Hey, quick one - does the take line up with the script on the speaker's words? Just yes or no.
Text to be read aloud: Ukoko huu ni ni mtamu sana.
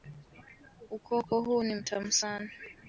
no